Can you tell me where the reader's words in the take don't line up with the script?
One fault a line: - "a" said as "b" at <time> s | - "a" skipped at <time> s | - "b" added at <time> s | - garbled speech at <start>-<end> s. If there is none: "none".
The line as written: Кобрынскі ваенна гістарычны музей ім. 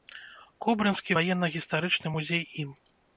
none